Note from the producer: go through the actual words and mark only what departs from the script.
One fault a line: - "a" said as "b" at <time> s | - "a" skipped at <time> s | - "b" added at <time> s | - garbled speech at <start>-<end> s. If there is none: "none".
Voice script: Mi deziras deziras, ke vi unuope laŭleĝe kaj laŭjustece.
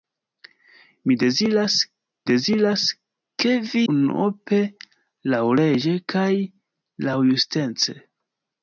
none